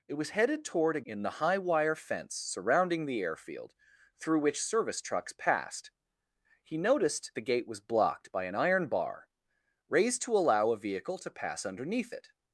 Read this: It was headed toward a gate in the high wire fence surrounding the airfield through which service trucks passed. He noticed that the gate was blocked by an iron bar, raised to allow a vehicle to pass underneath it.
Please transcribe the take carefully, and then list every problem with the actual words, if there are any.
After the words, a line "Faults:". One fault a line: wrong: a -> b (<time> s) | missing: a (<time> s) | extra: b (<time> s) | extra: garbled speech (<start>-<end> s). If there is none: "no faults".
It was headed toward a in the high wire fence surrounding the airfield through which service trucks passed. He noticed the gate was blocked by an iron bar, raised to allow a vehicle to pass underneath it.
Faults:
missing: gate (1.0 s)
missing: that (7.3 s)